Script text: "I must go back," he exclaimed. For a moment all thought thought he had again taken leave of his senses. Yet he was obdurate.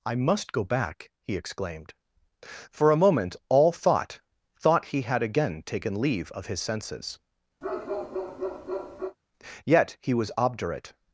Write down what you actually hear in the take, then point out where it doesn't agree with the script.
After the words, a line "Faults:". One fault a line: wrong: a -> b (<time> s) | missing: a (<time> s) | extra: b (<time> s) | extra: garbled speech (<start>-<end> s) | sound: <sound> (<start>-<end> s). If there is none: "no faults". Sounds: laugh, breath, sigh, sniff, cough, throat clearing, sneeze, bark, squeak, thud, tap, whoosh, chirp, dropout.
"I must go back," he exclaimed. For a moment all thought thought he had again taken leave of his senses. Yet he was obdurate.
Faults:
sound: bark (7.6-9.2 s)